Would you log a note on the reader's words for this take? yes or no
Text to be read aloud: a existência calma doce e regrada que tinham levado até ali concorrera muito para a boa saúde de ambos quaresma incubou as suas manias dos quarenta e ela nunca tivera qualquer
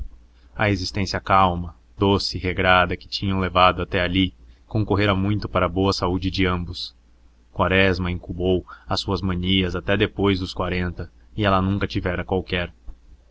yes